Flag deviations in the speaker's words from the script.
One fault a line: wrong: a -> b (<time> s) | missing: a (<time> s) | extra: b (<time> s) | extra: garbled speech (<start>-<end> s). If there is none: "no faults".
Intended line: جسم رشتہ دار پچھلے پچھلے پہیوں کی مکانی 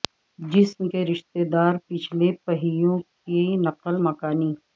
extra: کے (0.9 s)
missing: پچھلے (2.3 s)
extra: نقل (3.6 s)